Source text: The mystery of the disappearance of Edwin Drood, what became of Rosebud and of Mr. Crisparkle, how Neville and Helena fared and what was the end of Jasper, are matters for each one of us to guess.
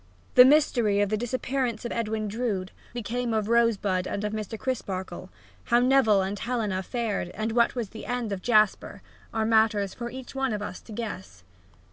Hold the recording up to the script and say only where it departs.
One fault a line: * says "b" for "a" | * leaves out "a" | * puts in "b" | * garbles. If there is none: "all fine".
* leaves out "what"